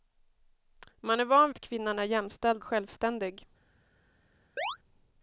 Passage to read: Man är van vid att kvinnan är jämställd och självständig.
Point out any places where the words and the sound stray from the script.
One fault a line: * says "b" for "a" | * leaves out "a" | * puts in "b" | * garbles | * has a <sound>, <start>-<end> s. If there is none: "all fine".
* leaves out "vid"
* leaves out "och"
* has a chirp, 4.6-4.8 s